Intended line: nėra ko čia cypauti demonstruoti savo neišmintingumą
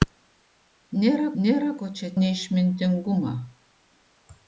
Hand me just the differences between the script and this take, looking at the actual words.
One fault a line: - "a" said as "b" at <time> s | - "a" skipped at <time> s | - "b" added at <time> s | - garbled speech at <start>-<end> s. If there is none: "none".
- "nėra" added at 1.4 s
- "cypauti demonstruoti savo" skipped at 2.1 s